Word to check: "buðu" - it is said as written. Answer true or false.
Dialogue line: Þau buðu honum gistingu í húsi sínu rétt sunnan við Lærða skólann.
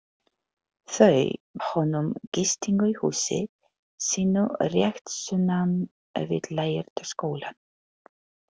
false